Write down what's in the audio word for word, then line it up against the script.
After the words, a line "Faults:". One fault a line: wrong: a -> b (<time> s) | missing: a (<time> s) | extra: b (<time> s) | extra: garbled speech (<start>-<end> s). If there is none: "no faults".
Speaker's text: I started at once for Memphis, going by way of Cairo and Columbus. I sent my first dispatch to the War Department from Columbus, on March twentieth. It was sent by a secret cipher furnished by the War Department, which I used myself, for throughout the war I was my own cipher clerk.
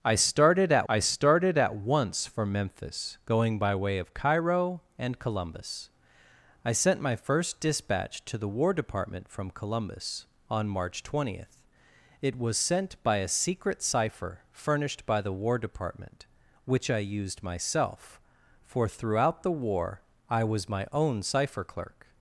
I started at I started at once for Memphis, going by way of Cairo and Columbus. I sent my first dispatch to the War Department from Columbus, on March twentieth. It was sent by a secret cipher furnished by the War Department, which I used myself, for throughout the war I was my own cipher clerk.
Faults:
extra: I started at (0.9 s)